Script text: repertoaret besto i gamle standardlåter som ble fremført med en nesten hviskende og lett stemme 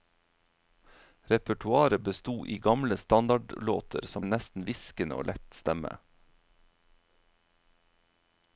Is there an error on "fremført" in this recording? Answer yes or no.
yes